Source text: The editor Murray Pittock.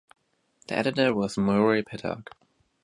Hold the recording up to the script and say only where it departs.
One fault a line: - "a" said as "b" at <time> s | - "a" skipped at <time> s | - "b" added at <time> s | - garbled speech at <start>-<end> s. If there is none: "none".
- "was" added at 1.1 s